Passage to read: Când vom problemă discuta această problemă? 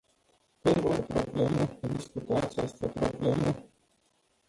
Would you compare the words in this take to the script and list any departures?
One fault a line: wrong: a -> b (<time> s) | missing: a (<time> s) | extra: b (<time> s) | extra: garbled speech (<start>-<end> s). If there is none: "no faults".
no faults